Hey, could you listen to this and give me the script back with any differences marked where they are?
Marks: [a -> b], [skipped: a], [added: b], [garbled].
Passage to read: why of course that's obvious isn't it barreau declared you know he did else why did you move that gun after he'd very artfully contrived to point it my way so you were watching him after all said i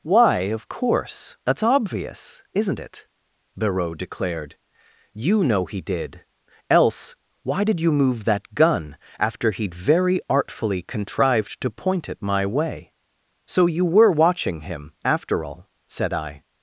why of course that's obvious isn't it barreau declared you know he did else why did you move that gun after he'd very artfully contrived to point it my way so you were watching him after all said i